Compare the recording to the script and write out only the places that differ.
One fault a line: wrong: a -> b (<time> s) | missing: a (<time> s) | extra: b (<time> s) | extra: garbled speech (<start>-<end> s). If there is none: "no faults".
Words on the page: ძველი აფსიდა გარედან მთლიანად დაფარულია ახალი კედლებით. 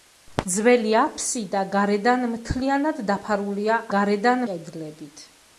wrong: ახალი -> გარედან (3.9 s)